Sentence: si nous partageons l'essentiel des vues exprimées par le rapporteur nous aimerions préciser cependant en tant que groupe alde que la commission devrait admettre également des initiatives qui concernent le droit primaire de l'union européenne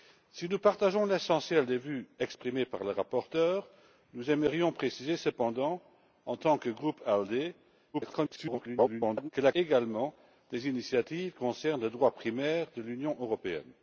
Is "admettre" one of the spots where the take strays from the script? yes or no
yes